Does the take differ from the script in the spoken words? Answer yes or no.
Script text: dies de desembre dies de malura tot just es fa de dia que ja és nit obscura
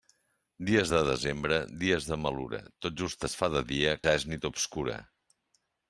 yes